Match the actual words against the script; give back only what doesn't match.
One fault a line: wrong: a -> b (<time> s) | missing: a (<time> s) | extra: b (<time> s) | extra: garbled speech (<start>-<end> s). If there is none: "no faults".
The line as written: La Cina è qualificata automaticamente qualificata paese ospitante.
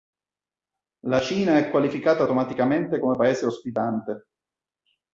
wrong: qualificata -> come (3.0 s)